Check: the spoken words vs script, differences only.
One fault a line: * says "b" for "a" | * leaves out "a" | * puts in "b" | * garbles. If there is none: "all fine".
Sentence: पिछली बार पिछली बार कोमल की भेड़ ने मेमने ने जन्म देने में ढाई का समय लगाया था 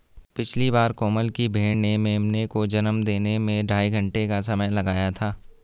* leaves out "पिछली बार"
* says "को" for "ने"
* puts in "घंटे"